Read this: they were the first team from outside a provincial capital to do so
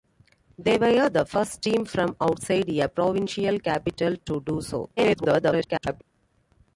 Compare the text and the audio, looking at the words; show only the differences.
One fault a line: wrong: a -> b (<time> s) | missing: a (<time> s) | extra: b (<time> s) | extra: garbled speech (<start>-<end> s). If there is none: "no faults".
extra: garbled speech (5.0-6.0 s)